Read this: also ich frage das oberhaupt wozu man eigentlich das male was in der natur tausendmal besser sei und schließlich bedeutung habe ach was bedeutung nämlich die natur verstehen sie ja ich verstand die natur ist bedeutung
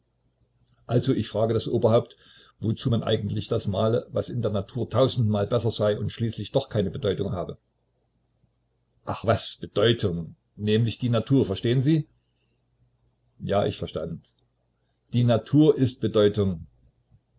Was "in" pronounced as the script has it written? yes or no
yes